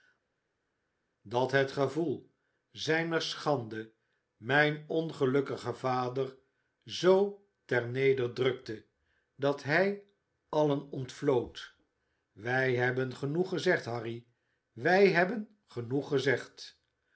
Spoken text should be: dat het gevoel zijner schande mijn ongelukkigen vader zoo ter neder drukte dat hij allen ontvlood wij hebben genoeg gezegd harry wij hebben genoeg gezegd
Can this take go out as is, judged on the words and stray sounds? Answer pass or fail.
pass